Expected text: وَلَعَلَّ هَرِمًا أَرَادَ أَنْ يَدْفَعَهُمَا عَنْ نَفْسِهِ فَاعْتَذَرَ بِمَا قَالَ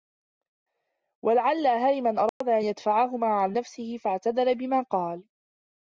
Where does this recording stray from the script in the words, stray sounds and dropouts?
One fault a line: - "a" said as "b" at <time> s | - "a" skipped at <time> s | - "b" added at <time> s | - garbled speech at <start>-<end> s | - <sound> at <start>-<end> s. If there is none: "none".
- dropout at 2.3-2.4 s